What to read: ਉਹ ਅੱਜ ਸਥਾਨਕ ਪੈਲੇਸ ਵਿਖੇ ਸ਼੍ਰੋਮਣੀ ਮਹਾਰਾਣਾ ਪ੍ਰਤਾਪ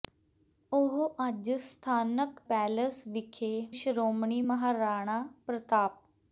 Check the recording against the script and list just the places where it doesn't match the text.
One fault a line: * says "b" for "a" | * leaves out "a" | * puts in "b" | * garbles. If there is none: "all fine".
all fine